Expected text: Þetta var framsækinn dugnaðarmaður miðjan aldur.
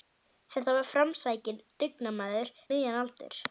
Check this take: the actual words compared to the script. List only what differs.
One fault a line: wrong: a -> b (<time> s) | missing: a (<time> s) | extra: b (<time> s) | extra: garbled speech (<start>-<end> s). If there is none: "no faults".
no faults